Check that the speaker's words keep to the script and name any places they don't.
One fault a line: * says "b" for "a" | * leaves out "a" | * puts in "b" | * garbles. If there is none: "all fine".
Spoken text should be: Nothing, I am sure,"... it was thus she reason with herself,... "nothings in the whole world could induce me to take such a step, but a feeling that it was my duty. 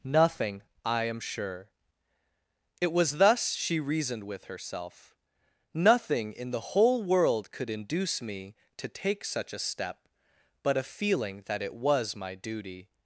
* says "reasoned" for "reason"
* says "nothing" for "nothings"